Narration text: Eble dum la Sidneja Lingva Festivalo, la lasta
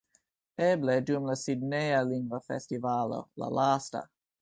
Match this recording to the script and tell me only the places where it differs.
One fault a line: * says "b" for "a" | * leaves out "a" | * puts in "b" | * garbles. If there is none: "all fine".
all fine